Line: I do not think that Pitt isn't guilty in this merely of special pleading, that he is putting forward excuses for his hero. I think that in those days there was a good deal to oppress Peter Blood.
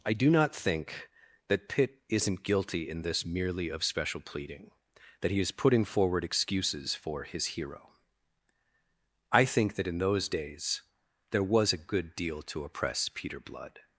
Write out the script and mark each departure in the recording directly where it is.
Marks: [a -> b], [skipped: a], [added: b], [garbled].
I do not think that Pitt isn't guilty in this merely of special pleading, that he is putting forward excuses for his hero. I think that in those days there was a good deal to oppress Peter Blood.